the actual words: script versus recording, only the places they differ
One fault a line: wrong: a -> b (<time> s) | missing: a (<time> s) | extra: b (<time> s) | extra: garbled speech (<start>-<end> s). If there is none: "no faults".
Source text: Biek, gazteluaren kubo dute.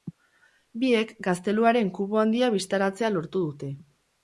extra: handia bistaratzea lortu (2.2 s)